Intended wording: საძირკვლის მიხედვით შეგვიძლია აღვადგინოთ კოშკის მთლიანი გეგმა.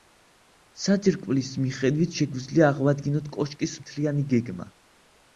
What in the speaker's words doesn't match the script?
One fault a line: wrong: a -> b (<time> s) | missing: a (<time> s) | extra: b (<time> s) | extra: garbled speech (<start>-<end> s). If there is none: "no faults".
no faults